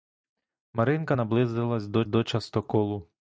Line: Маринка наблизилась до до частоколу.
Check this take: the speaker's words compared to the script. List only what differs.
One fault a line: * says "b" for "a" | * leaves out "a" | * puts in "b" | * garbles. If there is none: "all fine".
all fine